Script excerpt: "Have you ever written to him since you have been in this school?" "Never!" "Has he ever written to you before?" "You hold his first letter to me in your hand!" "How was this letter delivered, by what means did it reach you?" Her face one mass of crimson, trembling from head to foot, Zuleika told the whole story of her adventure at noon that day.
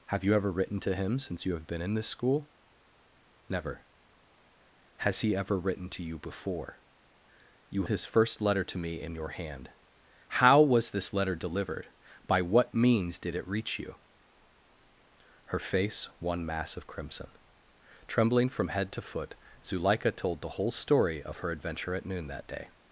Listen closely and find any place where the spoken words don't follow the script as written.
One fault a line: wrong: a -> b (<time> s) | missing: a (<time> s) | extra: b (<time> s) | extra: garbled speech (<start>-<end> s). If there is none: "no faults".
missing: hold (7.8 s)